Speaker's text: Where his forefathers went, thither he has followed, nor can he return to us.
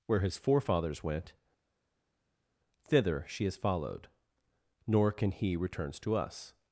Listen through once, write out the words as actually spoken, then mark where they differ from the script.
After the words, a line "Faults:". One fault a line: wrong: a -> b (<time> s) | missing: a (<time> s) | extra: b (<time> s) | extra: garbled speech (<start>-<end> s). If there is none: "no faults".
Where his forefathers went, thither she has followed, nor can he returns to us.
Faults:
wrong: he -> she (3.3 s)
wrong: return -> returns (5.6 s)